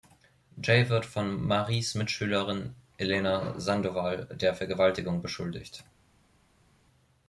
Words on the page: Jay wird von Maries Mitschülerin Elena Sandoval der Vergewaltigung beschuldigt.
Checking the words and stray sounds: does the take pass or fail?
pass